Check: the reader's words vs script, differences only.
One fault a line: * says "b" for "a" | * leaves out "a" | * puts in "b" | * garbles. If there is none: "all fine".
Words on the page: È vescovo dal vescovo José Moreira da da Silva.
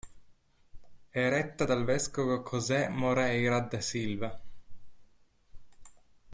* says "retta" for "vescovo"
* leaves out "da"